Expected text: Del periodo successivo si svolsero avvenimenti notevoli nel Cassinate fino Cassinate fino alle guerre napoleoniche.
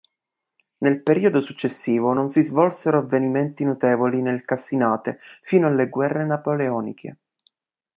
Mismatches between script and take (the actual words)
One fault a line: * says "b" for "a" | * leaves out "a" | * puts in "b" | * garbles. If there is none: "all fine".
* says "Nel" for "Del"
* puts in "non"
* leaves out "Cassinate fino"